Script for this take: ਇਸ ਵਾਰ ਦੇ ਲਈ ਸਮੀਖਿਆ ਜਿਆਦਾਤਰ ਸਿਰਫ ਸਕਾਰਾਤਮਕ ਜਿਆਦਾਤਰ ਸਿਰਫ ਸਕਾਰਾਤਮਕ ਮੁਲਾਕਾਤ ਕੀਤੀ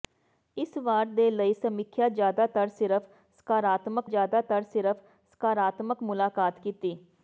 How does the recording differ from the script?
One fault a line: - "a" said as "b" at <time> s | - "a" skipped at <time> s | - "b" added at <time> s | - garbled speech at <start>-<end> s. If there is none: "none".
none